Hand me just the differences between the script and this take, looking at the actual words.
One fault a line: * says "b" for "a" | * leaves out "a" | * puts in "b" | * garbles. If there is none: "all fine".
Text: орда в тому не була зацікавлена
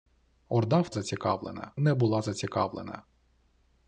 * says "зацікавлена" for "тому"